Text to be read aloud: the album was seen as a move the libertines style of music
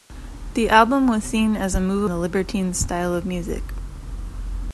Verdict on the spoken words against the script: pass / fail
pass